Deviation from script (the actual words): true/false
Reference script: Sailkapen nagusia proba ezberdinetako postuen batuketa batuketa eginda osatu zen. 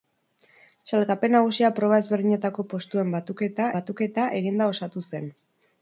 false